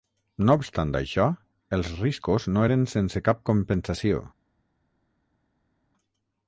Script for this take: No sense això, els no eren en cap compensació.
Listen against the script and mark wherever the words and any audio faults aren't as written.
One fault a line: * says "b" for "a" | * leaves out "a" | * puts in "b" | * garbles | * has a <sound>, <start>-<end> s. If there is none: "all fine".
* says "obstant" for "sense"
* puts in "riscos"
* says "sense" for "en"